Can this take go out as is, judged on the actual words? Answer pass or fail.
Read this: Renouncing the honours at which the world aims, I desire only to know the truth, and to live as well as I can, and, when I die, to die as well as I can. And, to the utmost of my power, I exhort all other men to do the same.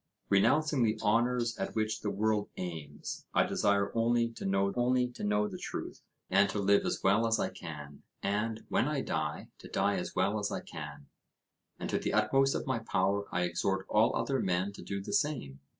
fail